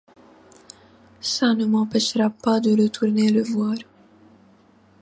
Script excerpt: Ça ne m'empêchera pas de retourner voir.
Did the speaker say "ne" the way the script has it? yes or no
yes